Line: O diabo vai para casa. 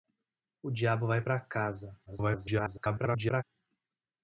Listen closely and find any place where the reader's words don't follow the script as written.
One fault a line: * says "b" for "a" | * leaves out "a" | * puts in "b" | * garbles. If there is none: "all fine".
* garbles